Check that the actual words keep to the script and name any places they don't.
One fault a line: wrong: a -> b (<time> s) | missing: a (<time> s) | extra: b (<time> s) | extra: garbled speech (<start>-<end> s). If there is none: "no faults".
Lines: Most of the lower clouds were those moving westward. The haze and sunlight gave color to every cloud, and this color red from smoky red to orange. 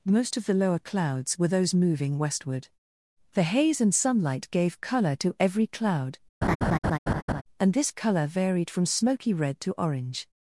wrong: red -> varied (8.3 s)